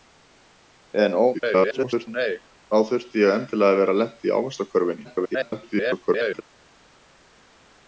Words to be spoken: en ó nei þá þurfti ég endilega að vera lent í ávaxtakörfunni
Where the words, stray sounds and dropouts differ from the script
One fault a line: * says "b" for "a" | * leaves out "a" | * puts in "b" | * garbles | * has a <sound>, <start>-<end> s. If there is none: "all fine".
* garbles
* garbles